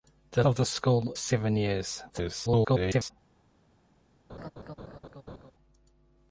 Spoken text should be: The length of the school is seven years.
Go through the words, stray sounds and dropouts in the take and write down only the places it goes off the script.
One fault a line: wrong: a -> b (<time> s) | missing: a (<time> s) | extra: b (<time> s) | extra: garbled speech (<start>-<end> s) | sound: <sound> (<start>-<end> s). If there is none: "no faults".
missing: length (0.4 s)
missing: is (1.1 s)
extra: garbled speech (2.1-3.1 s)
sound: laugh (4.3-5.5 s)